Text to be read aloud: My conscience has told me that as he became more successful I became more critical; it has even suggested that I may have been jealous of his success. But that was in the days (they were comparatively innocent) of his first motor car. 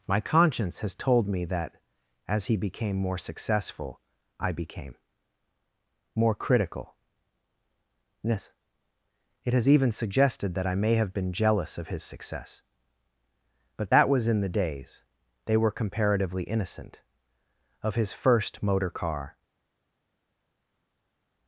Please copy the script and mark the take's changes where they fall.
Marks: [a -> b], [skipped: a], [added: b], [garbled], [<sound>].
My conscience has told me that as he became more successful I became more critical; [added: yes] it has even suggested that I may have been jealous of his success. But that was in the days (they were comparatively innocent) of his first motor car.